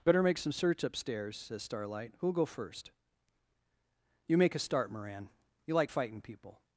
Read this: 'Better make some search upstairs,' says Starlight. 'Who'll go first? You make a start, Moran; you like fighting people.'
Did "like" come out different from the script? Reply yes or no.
no